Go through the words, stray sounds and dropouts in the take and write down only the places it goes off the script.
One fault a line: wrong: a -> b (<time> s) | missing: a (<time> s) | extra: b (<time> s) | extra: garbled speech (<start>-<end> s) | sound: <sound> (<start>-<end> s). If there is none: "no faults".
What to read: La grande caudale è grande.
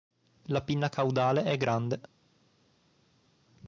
wrong: grande -> pinna (0.6 s)